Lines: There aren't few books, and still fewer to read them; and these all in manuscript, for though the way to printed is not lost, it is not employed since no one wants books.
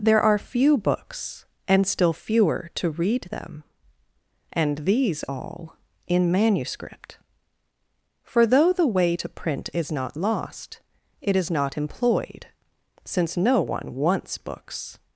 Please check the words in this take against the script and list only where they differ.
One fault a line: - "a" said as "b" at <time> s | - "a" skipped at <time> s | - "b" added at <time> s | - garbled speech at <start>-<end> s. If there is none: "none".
- "aren't" said as "are" at 0.2 s
- "printed" said as "print" at 9.3 s